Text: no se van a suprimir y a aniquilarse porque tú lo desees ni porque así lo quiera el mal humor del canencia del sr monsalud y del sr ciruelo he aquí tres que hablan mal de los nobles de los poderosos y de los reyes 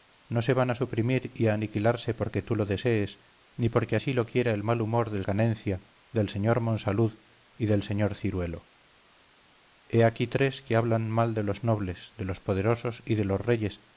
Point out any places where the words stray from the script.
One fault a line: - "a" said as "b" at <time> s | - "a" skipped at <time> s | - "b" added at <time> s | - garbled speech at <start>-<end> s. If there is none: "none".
none